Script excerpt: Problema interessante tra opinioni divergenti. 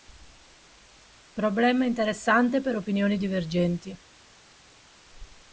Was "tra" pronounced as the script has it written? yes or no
no